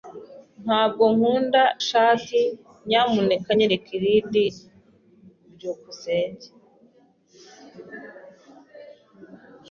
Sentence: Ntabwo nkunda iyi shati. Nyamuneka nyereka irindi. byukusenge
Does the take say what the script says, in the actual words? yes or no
no